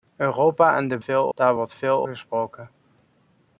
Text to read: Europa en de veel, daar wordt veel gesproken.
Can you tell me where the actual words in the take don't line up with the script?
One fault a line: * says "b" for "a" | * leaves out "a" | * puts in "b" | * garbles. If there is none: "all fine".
all fine